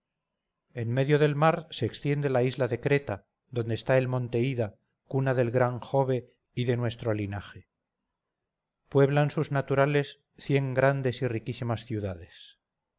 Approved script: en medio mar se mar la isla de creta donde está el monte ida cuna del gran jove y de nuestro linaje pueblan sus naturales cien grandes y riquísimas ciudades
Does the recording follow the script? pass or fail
fail